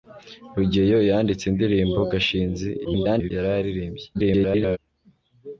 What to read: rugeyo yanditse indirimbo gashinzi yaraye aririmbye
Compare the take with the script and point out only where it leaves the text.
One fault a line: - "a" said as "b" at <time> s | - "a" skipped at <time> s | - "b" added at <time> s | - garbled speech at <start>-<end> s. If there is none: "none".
- garbled speech at 2.8-3.3 s
- garbled speech at 4.1-4.8 s